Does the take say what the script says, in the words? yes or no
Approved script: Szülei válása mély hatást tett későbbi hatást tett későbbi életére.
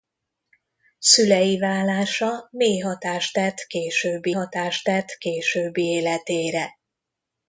yes